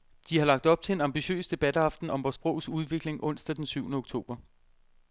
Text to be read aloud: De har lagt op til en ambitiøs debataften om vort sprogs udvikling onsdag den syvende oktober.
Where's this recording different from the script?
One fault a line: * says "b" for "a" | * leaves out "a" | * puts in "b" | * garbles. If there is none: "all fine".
all fine